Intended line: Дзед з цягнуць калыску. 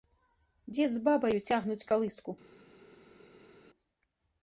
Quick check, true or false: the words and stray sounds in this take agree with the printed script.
false